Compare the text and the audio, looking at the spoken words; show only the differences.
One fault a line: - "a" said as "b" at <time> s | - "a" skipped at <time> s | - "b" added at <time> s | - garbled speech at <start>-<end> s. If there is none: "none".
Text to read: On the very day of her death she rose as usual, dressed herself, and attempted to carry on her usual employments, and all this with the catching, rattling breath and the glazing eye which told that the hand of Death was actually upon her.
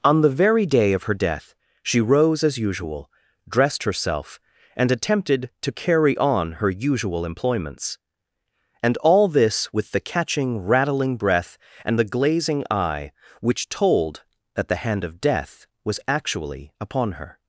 none